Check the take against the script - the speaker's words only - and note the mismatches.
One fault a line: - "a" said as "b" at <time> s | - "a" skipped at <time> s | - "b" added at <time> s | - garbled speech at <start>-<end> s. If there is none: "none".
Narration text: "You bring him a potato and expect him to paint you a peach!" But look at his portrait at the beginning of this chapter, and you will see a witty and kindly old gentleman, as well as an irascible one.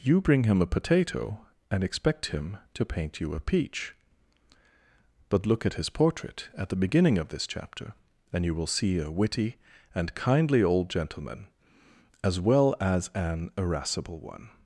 none